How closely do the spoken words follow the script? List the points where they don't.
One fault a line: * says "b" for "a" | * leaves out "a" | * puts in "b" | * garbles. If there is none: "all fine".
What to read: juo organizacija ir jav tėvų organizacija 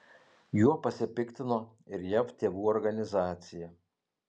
* says "pasipiktino" for "organizacija"